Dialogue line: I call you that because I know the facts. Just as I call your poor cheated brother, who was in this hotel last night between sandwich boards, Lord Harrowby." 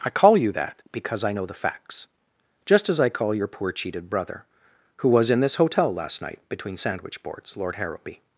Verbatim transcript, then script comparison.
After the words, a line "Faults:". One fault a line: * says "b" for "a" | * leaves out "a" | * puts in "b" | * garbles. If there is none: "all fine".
I call you that because I know the facts. Just as I call your poor cheated brother, who was in this hotel last night between sandwich boards, Lord Harrowby."
Faults:
all fine